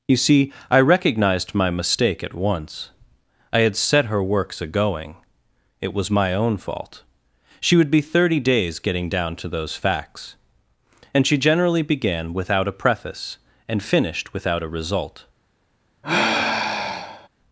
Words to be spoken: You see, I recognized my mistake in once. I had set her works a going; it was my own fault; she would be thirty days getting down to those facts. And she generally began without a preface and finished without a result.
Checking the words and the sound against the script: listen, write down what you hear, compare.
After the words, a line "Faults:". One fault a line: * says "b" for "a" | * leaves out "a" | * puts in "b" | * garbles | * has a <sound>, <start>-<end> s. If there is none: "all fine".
You see, I recognized my mistake at once. I had set her works a going; it was my own fault; she would be thirty days getting down to those facts. And she generally began without a preface and finished without a result.
Faults:
* says "at" for "in"
* has a sigh, 16.0-17.3 s